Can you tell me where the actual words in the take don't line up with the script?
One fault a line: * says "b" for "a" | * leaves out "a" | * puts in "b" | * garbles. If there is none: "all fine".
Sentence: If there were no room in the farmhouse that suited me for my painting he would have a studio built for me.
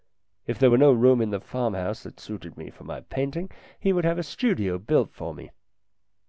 all fine